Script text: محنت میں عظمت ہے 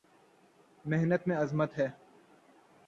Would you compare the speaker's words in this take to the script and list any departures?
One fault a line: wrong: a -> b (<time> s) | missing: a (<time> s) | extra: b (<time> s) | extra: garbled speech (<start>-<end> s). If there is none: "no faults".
no faults